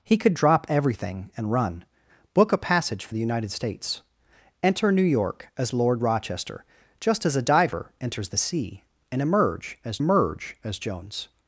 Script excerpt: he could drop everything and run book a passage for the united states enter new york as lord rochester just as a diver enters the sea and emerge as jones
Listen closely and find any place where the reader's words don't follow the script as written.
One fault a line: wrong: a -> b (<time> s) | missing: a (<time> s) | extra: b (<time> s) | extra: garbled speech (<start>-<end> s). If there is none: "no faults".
extra: emerge as (10.0 s)